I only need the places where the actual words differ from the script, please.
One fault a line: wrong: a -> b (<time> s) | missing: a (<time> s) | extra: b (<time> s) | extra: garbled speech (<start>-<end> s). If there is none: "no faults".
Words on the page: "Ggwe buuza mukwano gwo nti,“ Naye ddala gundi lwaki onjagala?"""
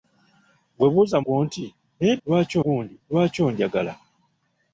missing: mukwano (1.2 s)
wrong: ddala -> lwaki (2.3 s)